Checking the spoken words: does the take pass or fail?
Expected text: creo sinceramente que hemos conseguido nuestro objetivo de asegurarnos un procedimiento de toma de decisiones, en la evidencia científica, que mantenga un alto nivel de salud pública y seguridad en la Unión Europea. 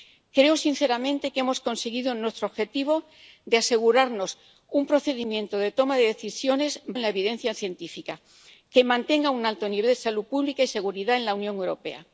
pass